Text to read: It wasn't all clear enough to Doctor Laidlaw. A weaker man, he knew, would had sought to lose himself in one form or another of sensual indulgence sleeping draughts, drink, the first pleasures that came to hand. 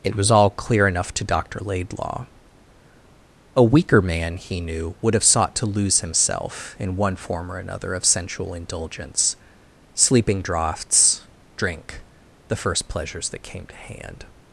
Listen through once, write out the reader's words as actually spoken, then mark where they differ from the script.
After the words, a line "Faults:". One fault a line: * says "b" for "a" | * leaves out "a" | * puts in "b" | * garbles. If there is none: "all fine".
It was all clear enough to Doctor Laidlaw. A weaker man, he knew, would have sought to lose himself in one form or another of sensual indulgence sleeping draughts, drink, the first pleasures that came to hand.
Faults:
* says "was" for "wasn't"
* says "have" for "had"